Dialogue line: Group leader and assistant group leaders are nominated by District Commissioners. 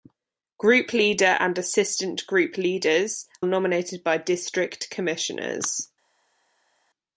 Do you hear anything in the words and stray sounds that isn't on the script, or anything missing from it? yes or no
yes